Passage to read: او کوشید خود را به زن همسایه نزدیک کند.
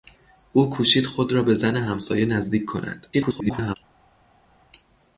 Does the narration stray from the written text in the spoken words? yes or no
yes